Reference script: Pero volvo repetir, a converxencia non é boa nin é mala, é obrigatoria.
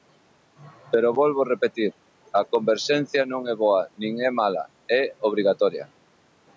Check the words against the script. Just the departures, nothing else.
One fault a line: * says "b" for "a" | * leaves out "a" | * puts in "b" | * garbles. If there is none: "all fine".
all fine